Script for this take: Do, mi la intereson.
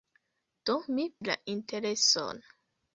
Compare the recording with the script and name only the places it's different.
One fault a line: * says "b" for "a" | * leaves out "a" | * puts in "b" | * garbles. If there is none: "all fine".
all fine